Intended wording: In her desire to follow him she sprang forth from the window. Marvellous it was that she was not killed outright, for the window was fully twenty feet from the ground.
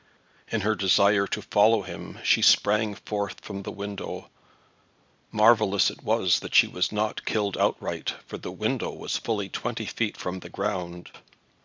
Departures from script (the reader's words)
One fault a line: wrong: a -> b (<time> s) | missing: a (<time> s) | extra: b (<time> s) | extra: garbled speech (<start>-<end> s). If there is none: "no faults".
no faults